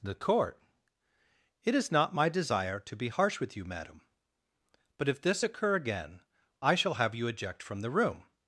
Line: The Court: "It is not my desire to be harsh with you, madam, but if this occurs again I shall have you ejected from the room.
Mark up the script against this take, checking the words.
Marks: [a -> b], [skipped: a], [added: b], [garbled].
The Court: "It is not my desire to be harsh with you, madam, but if this [occurs -> occur] again I shall have you [ejected -> eject] from the room.